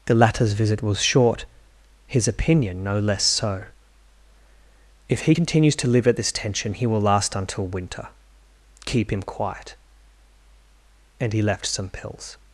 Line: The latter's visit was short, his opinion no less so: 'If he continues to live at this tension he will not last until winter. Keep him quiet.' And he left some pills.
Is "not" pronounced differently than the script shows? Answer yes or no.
yes